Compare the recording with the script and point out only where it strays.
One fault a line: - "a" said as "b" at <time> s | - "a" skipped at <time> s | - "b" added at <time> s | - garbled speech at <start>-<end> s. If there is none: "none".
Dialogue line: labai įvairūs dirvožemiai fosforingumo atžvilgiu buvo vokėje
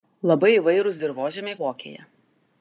- "fosforingumo atžvilgiu buvo" skipped at 1.6 s